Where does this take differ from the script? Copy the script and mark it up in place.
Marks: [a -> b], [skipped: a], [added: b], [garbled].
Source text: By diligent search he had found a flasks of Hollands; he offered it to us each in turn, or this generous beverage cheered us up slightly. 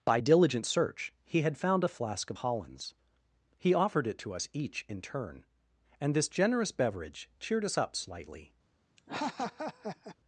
By diligent search he had found a [flasks -> flask] of Hollands; he offered it to us each in turn, [or -> and] this generous beverage cheered us up slightly.